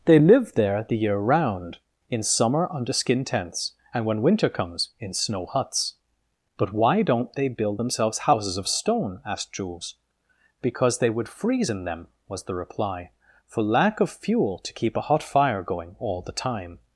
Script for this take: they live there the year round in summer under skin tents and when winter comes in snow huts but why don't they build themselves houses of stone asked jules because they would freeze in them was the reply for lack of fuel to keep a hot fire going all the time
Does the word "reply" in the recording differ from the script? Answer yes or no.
no